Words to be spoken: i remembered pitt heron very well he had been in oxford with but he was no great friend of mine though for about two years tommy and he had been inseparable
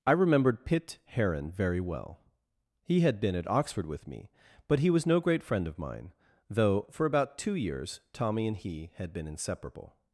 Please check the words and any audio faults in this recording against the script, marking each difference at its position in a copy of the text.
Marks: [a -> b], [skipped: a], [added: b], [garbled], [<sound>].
i remembered pitt heron very well he had been [in -> at] oxford with [added: me] but he was no great friend of mine though for about two years tommy and he had been inseparable